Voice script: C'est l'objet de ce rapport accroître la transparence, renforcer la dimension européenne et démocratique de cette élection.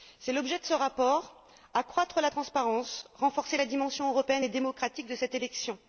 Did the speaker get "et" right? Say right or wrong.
right